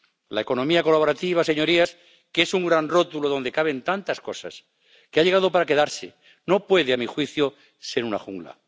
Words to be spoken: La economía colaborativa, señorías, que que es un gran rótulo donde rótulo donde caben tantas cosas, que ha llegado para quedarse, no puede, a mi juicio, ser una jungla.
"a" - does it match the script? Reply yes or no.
yes